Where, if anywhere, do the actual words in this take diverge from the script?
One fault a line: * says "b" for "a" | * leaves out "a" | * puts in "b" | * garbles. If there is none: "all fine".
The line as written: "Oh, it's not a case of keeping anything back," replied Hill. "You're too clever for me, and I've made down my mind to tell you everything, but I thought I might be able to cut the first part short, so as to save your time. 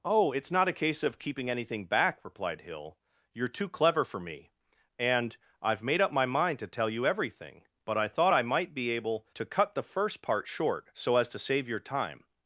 * says "up" for "down"